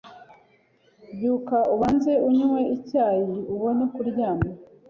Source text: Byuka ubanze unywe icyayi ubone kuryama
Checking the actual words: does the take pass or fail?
pass